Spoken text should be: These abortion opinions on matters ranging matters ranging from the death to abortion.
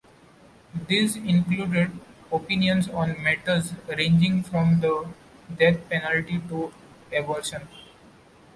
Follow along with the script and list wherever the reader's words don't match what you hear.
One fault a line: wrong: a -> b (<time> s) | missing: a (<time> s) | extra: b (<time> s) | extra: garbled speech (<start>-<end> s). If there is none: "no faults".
wrong: abortion -> included (1.2 s)
missing: matters ranging (4.4 s)
extra: penalty (5.9 s)